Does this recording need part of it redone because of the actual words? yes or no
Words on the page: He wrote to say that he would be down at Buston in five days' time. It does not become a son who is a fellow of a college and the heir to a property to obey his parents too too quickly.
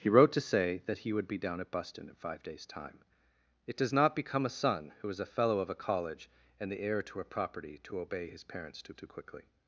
no